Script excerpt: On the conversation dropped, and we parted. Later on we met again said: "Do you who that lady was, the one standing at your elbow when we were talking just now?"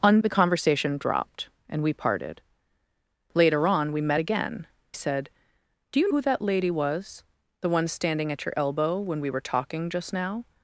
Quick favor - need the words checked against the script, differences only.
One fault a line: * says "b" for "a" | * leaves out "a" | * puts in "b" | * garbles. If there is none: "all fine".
all fine